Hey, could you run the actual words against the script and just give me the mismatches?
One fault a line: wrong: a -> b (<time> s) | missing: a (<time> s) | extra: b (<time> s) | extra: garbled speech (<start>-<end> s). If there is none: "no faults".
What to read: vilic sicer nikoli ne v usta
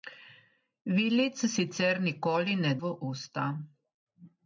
no faults